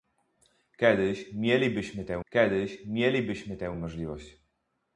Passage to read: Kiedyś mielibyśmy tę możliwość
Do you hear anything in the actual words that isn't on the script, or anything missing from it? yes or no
yes